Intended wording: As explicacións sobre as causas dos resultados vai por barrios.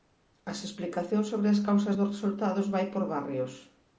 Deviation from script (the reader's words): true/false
false